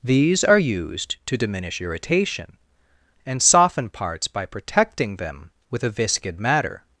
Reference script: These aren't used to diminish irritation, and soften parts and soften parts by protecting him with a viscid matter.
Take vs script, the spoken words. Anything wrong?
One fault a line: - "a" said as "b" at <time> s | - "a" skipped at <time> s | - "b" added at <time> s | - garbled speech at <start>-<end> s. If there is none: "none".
- "aren't" said as "are" at 0.4 s
- "and soften parts" skipped at 4.3 s
- "him" said as "them" at 5.2 s